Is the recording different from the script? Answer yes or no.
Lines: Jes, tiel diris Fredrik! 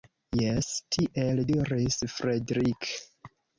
no